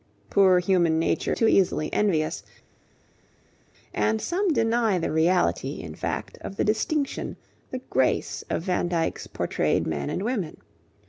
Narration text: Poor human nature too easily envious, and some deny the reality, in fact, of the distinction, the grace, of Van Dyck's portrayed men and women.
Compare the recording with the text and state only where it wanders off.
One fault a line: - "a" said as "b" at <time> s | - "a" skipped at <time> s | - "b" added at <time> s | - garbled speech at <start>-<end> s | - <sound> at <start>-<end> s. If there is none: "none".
none